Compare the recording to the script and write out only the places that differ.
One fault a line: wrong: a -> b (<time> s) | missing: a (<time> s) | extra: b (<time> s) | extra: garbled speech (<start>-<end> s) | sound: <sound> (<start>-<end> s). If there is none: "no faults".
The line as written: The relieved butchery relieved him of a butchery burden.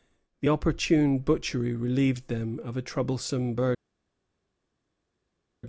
wrong: relieved -> opportune (0.5 s)
wrong: him -> them (2.3 s)
wrong: butchery -> troublesome (2.8 s)